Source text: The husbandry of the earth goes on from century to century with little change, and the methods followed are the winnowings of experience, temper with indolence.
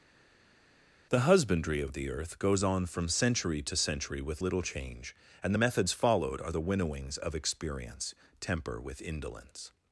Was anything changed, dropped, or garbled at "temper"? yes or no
no